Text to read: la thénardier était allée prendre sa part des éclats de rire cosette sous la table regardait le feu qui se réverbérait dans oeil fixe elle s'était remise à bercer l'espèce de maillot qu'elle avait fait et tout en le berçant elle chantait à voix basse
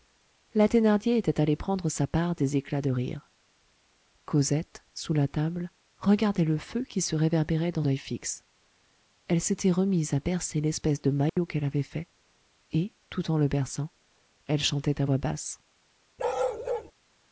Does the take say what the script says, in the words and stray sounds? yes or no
no